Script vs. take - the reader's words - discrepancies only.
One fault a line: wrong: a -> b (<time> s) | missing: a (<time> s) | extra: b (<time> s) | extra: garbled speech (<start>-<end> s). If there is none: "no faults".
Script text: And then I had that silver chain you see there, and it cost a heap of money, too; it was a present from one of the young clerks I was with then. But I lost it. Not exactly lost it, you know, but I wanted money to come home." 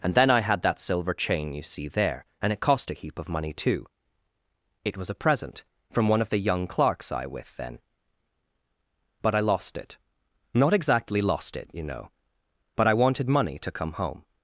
missing: was (7.3 s)